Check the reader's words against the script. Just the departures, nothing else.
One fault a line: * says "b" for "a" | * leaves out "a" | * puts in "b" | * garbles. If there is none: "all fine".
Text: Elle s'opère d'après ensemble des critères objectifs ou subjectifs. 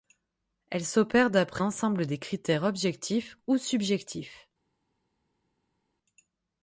all fine